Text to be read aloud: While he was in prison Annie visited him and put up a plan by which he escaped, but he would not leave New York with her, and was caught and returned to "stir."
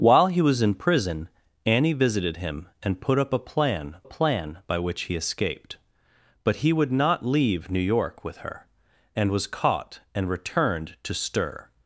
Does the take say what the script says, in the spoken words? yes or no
no